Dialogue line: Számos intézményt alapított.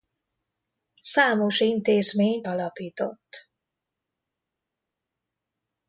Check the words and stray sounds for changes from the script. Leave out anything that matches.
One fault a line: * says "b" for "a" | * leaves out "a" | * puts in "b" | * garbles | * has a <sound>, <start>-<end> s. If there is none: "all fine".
all fine